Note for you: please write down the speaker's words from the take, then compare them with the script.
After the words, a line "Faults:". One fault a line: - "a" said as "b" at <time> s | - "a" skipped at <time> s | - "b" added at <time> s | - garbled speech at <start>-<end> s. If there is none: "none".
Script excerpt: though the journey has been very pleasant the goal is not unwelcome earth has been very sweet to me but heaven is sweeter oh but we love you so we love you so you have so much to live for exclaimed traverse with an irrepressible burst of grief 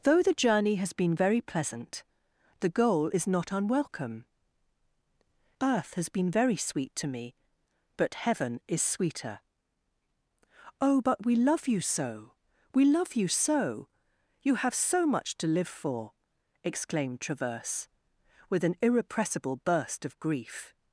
though the journey has been very pleasant the goal is not unwelcome earth has been very sweet to me but heaven is sweeter oh but we love you so we love you so you have so much to live for exclaimed traverse with an irrepressible burst of grief
Faults:
none